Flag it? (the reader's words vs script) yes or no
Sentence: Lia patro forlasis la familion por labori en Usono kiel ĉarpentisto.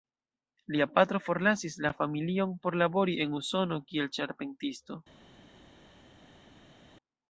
no